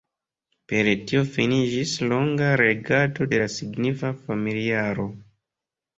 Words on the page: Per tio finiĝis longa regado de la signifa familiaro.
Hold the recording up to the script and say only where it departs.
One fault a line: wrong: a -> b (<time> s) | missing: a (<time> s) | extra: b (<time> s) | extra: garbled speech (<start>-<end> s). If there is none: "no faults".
no faults